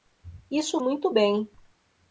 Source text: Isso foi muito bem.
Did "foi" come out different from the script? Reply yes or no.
yes